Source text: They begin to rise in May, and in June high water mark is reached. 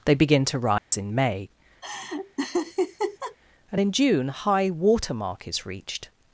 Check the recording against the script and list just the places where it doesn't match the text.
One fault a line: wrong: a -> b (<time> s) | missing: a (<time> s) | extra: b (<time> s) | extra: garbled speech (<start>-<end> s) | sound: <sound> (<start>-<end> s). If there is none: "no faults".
sound: dropout (0.8-0.9 s)
sound: laugh (1.8-3.4 s)